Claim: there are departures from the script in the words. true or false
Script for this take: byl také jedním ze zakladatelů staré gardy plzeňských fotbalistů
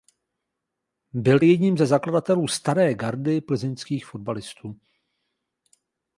true